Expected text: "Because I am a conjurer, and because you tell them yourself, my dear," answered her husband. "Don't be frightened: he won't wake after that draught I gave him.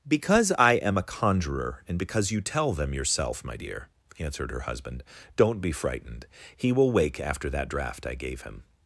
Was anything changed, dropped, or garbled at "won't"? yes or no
yes